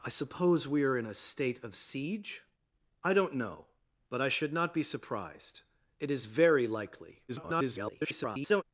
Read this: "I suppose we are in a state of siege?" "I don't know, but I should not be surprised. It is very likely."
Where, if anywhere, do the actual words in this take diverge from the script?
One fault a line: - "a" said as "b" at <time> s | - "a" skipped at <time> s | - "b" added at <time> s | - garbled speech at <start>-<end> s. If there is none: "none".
- garbled speech at 7.3-8.6 s